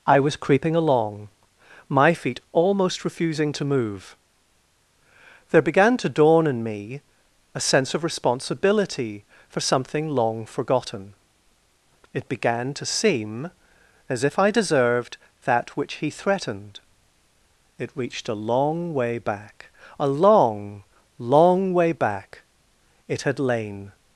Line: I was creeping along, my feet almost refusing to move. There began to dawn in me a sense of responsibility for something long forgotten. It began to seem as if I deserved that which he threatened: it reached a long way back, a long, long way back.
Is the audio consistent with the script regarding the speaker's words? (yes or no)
no